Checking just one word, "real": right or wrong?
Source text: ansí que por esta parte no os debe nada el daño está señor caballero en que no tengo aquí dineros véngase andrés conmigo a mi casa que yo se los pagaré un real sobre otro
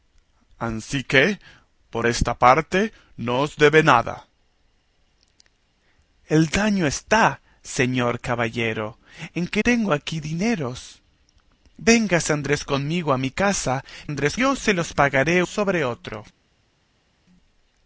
wrong